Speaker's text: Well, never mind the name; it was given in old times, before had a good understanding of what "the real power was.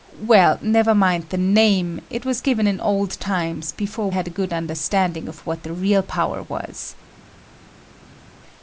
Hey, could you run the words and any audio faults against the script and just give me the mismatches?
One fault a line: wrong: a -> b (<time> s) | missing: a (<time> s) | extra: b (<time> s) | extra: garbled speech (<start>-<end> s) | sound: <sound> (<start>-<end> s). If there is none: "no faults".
no faults